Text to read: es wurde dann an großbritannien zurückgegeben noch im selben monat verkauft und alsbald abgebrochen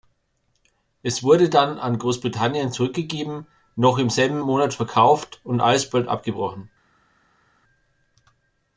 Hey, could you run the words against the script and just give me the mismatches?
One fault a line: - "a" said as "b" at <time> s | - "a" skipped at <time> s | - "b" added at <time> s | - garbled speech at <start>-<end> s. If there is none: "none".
none